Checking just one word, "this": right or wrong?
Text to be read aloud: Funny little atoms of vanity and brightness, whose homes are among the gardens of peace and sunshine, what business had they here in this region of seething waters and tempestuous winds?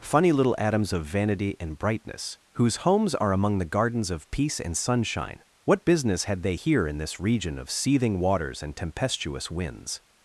right